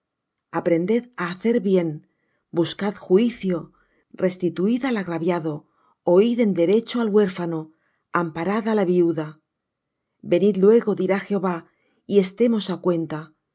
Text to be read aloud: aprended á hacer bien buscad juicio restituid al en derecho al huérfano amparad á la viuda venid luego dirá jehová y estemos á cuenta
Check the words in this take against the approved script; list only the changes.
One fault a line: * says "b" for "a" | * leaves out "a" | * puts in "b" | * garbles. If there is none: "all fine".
* puts in "agraviado oid"